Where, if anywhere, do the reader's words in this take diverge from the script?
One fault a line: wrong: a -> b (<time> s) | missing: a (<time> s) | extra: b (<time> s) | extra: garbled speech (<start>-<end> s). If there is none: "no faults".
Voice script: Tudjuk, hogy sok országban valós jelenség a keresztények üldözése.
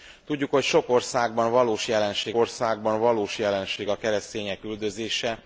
extra: országban valós jelenség (2.3 s)